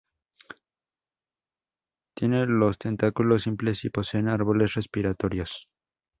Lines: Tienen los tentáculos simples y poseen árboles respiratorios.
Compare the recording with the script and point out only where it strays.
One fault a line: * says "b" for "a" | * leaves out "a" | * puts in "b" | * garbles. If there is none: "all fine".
all fine